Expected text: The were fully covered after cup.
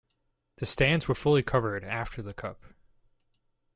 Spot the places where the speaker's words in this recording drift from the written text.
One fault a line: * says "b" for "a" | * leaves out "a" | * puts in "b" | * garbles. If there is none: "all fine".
* puts in "stands"
* puts in "the"